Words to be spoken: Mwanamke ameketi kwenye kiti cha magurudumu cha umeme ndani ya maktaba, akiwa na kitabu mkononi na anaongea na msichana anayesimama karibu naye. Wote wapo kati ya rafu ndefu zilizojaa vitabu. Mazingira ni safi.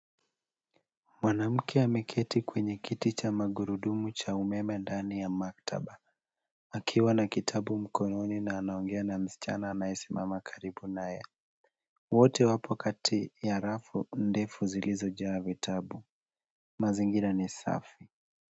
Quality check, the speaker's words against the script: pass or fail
pass